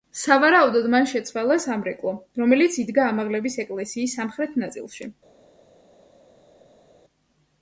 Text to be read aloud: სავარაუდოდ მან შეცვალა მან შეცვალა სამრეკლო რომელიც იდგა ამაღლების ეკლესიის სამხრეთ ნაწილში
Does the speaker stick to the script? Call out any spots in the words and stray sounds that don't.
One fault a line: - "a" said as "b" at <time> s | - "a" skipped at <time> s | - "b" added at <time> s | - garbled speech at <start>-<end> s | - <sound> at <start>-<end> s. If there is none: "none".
- "მან შეცვალა" skipped at 1.6 s